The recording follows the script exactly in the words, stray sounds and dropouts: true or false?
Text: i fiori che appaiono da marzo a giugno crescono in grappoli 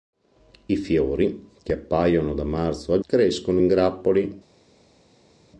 false